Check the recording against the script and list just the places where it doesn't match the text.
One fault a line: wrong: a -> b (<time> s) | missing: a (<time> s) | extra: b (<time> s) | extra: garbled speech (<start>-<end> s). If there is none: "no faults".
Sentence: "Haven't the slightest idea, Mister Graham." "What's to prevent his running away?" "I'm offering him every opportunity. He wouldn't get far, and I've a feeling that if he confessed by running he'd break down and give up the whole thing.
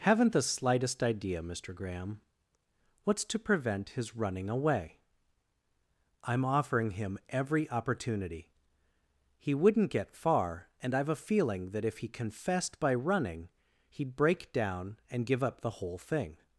no faults